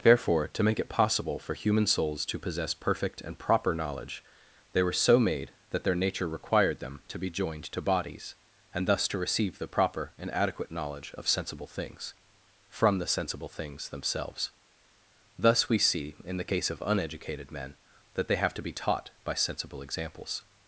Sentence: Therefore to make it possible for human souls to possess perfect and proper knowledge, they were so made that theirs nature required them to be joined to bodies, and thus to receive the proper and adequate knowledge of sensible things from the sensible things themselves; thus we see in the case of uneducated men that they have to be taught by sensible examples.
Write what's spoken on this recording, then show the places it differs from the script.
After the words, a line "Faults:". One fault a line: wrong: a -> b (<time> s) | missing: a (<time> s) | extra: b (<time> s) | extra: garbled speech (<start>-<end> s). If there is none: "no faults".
Therefore to make it possible for human souls to possess perfect and proper knowledge, they were so made that their nature required them to be joined to bodies, and thus to receive the proper and adequate knowledge of sensible things from the sensible things themselves; thus we see in the case of uneducated men that they have to be taught by sensible examples.
Faults:
wrong: theirs -> their (5.8 s)